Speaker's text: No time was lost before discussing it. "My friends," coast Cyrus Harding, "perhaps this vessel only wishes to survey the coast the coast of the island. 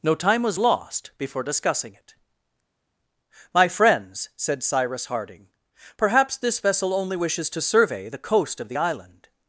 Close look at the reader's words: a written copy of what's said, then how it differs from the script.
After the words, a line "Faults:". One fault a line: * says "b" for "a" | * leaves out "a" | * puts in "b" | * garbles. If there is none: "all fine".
No time was lost before discussing it. "My friends," said Cyrus Harding, "perhaps this vessel only wishes to survey the coast of the island.
Faults:
* says "said" for "coast"
* leaves out "the coast"